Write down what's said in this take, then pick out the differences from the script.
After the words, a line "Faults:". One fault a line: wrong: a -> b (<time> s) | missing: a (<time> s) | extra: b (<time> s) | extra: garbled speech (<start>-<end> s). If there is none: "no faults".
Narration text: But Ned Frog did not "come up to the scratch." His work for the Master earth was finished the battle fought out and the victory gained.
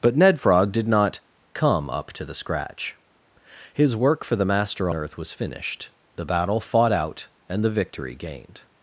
But Ned Frog did not "come up to the scratch." His work for the Master earth was finished the battle fought out and the victory gained.
Faults:
no faults